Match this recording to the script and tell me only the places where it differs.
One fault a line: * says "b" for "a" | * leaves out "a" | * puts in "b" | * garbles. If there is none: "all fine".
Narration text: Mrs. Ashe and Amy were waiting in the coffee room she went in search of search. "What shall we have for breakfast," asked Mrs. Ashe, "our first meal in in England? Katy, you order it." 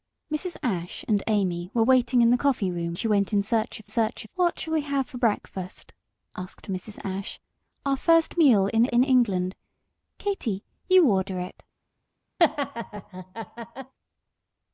all fine